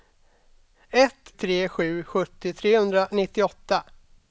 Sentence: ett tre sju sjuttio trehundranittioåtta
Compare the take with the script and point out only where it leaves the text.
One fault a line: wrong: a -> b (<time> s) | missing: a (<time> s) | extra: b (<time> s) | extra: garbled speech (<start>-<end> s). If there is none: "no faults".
no faults